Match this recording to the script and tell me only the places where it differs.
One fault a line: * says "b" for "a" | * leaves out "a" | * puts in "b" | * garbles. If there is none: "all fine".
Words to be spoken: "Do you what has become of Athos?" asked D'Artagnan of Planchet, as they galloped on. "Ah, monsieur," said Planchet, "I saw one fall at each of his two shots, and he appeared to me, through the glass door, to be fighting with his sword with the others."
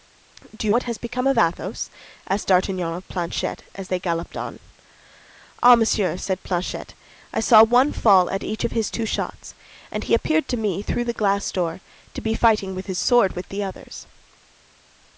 all fine